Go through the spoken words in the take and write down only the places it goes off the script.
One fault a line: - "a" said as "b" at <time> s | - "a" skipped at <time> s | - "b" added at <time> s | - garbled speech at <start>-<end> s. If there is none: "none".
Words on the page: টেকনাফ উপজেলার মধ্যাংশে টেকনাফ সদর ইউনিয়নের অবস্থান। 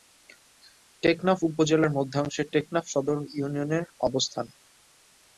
none